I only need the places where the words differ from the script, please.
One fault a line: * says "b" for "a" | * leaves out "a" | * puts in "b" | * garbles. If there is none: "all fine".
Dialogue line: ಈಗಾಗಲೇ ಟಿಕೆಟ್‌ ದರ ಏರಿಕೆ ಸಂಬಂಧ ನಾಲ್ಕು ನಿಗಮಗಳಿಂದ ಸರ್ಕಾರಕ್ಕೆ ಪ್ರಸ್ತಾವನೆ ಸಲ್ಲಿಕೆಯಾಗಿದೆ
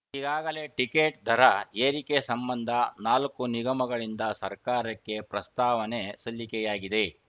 all fine